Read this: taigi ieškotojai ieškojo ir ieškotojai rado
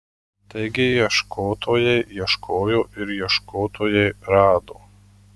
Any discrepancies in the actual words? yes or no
no